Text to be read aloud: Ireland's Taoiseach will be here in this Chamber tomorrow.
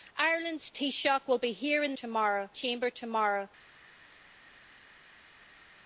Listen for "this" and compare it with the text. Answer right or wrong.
wrong